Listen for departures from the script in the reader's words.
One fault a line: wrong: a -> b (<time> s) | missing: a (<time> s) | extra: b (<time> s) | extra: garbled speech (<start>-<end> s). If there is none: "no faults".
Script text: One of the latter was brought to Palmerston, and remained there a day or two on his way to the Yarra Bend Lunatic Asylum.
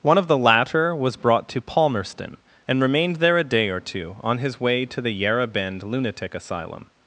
no faults